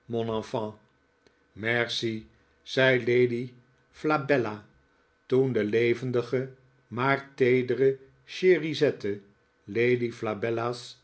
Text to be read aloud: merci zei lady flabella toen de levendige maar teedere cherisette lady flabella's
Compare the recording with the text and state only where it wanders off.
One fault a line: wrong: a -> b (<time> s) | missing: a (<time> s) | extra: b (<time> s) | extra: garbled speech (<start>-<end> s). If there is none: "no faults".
no faults